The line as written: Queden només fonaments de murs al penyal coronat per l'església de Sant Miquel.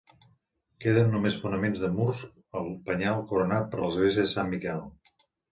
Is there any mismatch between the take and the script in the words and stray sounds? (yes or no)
no